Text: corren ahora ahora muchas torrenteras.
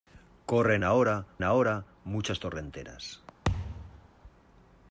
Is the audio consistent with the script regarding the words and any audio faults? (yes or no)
no